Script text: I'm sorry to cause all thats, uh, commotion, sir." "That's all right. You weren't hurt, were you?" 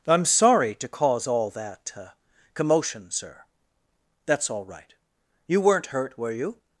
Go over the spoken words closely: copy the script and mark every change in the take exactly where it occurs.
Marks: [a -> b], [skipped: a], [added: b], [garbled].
I'm sorry to cause all [thats, -> that] uh, commotion, sir." "That's all right. You weren't hurt, were you?"